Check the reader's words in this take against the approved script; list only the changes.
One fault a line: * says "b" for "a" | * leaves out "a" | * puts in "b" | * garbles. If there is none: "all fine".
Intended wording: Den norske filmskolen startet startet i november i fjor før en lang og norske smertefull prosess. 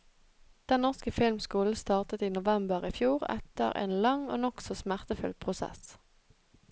* leaves out "startet"
* says "etter" for "før"
* says "nokså" for "norske"